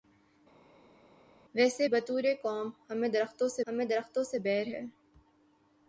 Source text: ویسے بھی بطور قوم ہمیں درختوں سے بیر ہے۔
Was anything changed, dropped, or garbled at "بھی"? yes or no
yes